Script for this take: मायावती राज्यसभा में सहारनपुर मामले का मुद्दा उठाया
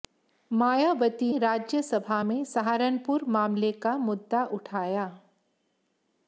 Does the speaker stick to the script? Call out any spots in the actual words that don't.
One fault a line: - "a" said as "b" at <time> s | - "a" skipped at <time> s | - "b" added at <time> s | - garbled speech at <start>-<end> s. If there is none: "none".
none